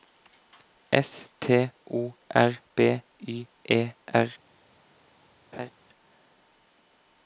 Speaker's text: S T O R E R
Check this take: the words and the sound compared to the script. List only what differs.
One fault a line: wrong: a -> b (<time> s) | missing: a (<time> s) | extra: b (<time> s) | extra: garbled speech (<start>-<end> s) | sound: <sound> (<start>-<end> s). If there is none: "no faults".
extra: B Y (2.7 s)
sound: laugh (5.5-5.7 s)